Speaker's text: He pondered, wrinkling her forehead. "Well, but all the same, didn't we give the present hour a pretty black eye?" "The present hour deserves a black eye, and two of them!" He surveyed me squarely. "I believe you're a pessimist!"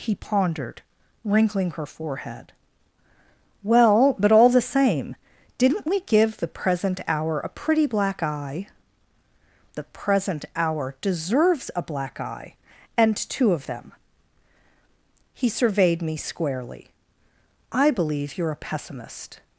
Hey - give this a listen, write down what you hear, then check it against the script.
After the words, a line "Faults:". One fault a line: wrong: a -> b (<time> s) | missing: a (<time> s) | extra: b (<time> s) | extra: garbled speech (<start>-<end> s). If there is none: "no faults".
He pondered, wrinkling her forehead. "Well, but all the same, didn't we give the present hour a pretty black eye?" "The present hour deserves a black eye, and two of them!" He surveyed me squarely. "I believe you're a pessimist!"
Faults:
no faults